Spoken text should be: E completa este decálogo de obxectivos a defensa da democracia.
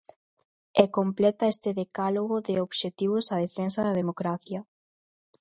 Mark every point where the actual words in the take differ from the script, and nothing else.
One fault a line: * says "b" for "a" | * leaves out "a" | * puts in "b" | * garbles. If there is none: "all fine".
all fine